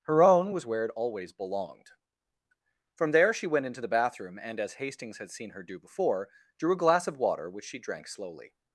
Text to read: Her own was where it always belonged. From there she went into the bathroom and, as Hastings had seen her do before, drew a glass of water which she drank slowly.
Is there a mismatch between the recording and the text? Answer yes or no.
no